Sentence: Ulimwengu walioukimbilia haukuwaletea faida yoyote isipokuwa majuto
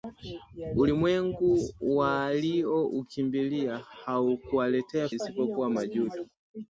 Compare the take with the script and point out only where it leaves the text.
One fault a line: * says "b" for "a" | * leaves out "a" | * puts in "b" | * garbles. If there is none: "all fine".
* leaves out "faida yoyote"